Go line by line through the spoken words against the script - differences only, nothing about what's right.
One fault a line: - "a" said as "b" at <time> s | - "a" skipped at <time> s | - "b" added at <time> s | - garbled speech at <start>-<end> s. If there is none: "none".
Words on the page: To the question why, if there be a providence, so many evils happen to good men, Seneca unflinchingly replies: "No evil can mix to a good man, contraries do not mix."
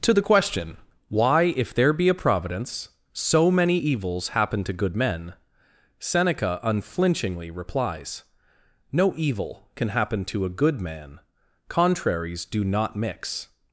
- "mix" said as "happen" at 9.9 s